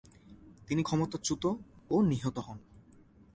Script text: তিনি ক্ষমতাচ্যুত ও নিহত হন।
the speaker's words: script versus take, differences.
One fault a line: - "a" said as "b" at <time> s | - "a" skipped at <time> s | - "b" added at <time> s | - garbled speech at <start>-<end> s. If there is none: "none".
none